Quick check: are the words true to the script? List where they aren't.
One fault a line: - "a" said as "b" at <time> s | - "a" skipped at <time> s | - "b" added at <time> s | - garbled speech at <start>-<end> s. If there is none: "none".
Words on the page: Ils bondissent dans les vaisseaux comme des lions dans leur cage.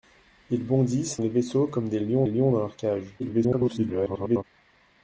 - "dans" skipped at 1.2 s
- "lions" added at 2.3 s
- garbled speech at 3.2-4.4 s